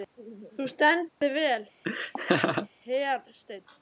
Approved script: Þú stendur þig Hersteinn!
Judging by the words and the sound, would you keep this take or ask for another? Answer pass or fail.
fail